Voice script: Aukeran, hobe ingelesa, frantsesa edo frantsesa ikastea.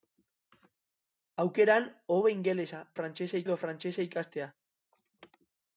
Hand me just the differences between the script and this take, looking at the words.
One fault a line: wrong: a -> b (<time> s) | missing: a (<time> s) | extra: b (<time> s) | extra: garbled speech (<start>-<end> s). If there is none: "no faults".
no faults